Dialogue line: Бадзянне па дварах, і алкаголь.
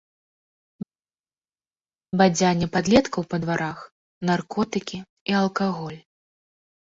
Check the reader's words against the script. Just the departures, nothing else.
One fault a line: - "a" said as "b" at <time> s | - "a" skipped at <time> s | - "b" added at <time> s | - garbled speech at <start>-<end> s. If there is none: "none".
- "падлеткаў" added at 2.7 s
- "наркотыкі" added at 4.3 s